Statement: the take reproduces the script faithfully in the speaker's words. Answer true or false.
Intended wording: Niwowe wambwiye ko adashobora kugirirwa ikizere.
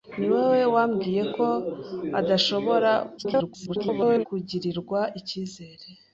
false